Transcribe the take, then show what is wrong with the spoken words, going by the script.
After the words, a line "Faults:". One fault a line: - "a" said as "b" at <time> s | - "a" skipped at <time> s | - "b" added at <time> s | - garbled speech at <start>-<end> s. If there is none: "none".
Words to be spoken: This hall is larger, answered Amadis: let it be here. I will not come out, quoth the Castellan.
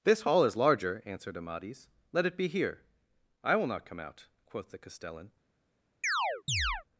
This hall is larger, answered Amadis: let it be here. I will not come out, quoth the Castellan.
Faults:
none